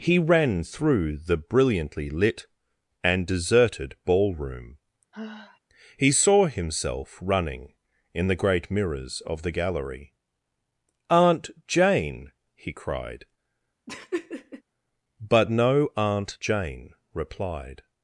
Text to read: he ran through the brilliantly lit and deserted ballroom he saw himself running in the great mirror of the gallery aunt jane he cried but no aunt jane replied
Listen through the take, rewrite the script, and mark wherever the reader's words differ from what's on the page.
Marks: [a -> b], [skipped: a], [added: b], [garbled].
he ran through the brilliantly lit and deserted ballroom he saw himself running in the great [mirror -> mirrors] of the gallery aunt jane he cried but no aunt jane replied